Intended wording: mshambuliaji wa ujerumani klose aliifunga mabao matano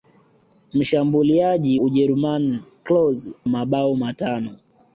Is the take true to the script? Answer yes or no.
no